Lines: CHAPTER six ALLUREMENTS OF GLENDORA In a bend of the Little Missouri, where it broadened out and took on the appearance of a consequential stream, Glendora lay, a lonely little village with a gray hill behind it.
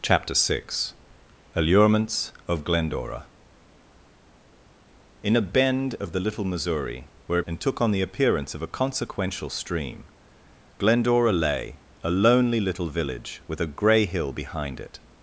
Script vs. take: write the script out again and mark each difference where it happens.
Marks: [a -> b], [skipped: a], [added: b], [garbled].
CHAPTER six ALLUREMENTS OF GLENDORA In a bend of the Little Missouri, where [skipped: it broadened out] and took on the appearance of a consequential stream, Glendora lay, a lonely little village with a gray hill behind it.